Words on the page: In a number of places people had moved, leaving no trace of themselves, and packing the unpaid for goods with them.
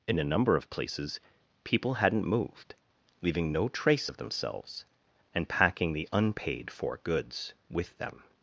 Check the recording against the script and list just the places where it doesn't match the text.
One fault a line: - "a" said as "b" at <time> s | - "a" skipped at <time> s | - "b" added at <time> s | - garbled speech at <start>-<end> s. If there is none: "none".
- "had" said as "hadn't" at 1.9 s